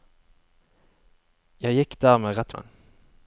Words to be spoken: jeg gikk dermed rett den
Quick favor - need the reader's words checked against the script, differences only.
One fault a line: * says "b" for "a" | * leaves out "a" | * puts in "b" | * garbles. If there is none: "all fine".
all fine